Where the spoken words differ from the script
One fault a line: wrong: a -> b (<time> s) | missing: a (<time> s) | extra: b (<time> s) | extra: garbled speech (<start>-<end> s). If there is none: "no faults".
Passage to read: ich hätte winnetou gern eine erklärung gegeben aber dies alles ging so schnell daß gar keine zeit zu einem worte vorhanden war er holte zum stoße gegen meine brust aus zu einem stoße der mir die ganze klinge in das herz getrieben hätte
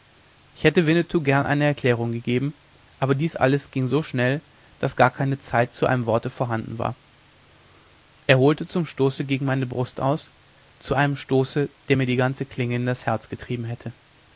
no faults